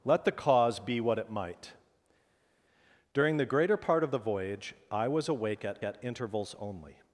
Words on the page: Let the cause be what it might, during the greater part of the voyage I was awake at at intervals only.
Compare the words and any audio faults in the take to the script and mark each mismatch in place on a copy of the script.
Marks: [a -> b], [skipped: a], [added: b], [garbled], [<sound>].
Let the cause be what it might, during the greater part of the voyage I was awake at at intervals only.